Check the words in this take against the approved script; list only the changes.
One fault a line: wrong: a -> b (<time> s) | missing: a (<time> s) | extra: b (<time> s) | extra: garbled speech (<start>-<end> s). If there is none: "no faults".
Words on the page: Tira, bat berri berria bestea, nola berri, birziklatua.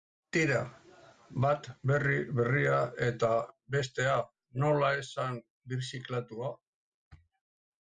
extra: eta (3.1 s)
wrong: berri -> esan (5.0 s)